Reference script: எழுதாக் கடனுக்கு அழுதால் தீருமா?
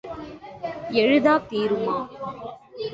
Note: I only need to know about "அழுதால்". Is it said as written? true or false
false